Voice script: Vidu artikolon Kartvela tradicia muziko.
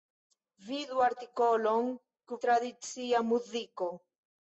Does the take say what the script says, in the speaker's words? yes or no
no